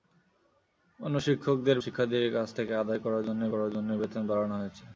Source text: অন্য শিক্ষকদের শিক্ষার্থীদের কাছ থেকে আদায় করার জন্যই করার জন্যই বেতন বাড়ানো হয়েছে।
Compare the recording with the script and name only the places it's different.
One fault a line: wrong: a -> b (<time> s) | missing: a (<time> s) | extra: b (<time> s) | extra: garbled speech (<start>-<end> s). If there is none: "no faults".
no faults